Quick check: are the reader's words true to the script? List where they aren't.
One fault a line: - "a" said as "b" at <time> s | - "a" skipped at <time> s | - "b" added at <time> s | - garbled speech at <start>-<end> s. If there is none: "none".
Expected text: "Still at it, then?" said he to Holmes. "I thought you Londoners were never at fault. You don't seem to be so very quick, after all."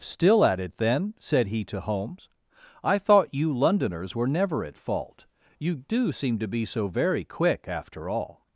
- "don't" said as "do" at 5.8 s